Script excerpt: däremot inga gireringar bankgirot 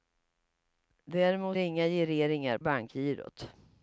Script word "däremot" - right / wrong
right